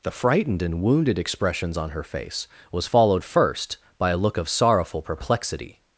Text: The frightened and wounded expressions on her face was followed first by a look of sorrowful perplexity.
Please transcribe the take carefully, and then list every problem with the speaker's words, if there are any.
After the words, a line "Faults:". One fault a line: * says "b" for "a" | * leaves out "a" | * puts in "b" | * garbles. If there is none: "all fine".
The frightened and wounded expressions on her face was followed first by a look of sorrowful perplexity.
Faults:
all fine